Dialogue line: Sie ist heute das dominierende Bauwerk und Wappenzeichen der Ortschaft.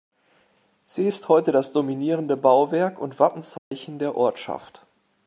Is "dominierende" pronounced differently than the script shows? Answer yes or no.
no